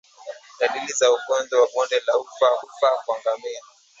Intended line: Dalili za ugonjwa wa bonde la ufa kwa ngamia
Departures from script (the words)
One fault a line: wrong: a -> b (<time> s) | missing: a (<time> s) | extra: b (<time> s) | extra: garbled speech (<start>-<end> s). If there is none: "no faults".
extra: ufa (2.6 s)